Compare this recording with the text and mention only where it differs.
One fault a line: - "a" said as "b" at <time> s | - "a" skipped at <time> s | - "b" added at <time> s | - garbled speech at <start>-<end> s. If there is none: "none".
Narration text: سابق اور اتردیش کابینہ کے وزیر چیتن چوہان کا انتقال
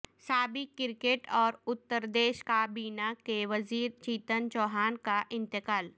- "کرکٹ" added at 0.8 s